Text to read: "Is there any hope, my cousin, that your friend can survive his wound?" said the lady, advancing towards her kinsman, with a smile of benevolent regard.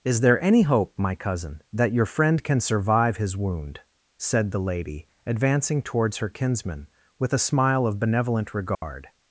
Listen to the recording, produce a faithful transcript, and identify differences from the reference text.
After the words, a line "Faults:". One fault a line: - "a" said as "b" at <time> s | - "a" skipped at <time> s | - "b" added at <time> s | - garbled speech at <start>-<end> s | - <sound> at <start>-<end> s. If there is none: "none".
"Is there any hope, my cousin, that your friend can survive his wound?" said the lady, advancing towards her kinsman, with a smile of benevolent regard.
Faults:
- dropout at 8.7-8.8 s